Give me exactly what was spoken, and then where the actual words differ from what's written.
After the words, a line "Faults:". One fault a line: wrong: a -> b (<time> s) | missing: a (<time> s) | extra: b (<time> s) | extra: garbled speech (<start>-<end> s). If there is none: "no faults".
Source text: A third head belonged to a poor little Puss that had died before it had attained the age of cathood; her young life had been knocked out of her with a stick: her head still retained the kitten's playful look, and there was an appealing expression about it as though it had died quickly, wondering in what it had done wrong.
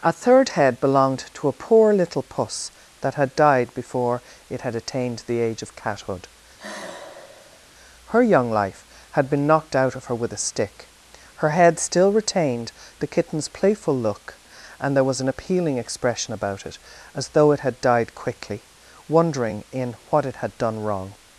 A third head belonged to a poor little Puss that had died before it had attained the age of cathood; her young life had been knocked out of her with a stick: her head still retained the kitten's playful look, and there was an appealing expression about it as though it had died quickly, wondering in what it had done wrong.
Faults:
no faults